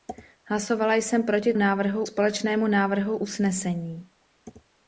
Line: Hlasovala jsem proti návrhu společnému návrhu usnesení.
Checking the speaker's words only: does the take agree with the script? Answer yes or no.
yes